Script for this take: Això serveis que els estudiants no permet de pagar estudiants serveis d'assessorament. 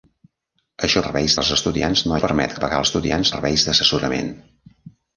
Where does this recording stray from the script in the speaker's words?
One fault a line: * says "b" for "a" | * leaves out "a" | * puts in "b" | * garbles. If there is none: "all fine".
all fine